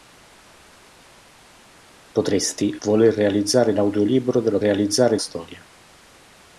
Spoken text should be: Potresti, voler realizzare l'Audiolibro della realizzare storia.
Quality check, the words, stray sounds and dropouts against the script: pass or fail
pass